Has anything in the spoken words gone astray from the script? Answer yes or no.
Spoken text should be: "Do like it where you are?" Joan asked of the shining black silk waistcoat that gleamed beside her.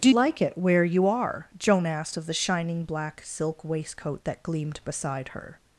no